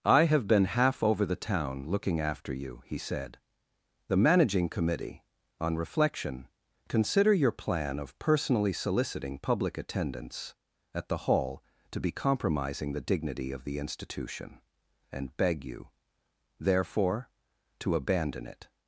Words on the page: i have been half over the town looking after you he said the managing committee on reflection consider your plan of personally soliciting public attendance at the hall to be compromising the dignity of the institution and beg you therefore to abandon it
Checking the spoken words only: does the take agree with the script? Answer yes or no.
yes